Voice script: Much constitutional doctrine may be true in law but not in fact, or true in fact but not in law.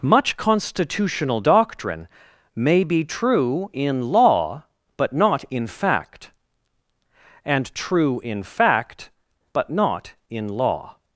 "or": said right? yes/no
no